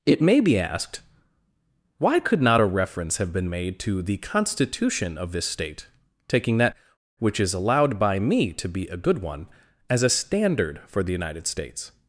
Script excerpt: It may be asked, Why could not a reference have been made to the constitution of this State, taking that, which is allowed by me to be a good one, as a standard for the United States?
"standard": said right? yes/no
yes